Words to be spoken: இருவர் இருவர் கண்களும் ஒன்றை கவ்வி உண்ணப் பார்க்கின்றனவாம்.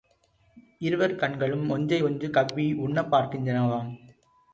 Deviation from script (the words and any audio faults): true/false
true